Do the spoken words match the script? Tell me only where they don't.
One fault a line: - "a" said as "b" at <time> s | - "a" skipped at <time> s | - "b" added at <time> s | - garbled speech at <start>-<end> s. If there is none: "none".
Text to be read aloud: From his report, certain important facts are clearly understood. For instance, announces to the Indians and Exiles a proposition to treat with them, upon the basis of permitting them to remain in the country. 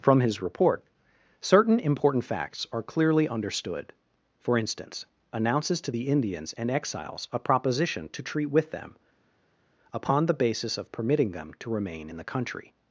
none